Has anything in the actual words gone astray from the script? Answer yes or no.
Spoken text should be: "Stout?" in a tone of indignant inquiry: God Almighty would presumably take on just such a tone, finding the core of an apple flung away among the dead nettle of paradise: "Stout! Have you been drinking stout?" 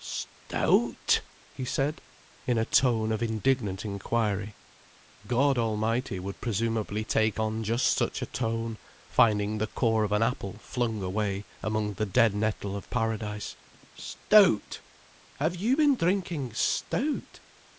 yes